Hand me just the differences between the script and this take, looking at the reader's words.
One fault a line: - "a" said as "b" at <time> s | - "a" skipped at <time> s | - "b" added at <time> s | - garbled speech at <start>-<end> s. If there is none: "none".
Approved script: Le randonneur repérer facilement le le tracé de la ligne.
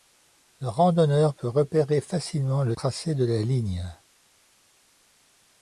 - "peut" added at 1.4 s
- "le" skipped at 2.8 s